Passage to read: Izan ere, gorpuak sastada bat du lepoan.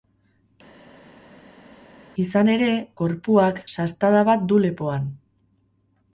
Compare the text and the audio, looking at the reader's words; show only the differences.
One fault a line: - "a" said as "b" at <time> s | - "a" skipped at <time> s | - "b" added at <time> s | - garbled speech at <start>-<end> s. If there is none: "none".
none